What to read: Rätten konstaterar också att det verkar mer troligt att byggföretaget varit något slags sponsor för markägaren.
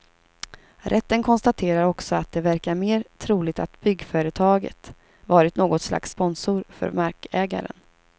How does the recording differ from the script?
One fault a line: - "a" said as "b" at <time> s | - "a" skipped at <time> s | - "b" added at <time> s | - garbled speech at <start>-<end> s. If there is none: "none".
none